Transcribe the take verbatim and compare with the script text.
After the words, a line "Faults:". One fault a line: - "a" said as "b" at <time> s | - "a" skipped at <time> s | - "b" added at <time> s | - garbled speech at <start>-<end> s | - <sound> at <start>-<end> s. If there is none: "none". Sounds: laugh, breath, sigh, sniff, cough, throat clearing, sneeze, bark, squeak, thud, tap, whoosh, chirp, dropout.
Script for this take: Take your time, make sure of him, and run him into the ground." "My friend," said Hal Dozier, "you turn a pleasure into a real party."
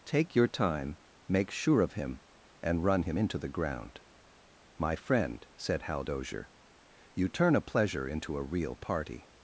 Take your time, make sure of him, and run him into the ground." "My friend," said Hal Dozier, "you turn a pleasure into a real party."
Faults:
none